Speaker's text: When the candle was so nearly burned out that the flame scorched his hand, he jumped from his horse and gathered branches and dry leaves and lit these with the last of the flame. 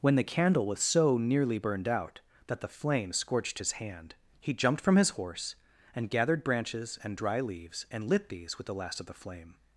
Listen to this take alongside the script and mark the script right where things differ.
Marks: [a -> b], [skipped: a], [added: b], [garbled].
When the candle was so nearly burned out that the flame scorched his hand, he jumped from his horse and gathered branches and dry leaves and lit these with the last of the flame.